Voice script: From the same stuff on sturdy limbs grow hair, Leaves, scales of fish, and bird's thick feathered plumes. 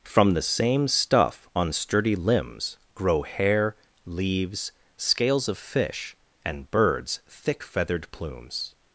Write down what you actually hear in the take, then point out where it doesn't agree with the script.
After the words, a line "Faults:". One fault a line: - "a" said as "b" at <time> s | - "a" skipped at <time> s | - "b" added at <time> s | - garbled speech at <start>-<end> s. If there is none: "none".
From the same stuff on sturdy limbs grow hair, Leaves, scales of fish, and bird's thick feathered plumes.
Faults:
none